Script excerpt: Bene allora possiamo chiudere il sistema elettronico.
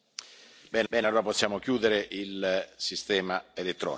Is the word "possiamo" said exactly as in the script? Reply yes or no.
yes